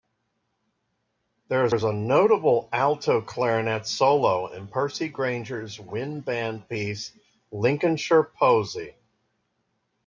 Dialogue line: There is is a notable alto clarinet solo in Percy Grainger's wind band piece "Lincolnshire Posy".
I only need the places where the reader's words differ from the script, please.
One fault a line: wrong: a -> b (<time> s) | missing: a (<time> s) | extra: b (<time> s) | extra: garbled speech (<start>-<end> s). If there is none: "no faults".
no faults